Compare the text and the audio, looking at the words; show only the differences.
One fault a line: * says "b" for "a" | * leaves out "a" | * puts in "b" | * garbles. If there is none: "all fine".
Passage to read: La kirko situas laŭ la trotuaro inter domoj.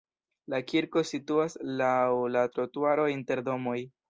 all fine